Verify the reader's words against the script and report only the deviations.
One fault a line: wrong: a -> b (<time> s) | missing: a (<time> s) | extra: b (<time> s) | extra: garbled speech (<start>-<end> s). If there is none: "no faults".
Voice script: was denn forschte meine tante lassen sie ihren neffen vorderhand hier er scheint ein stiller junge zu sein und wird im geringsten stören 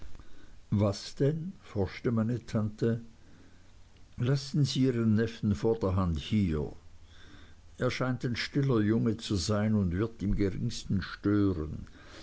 no faults